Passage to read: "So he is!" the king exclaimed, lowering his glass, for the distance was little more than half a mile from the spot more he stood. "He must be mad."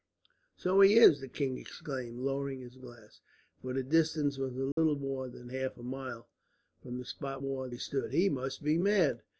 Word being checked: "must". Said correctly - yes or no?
yes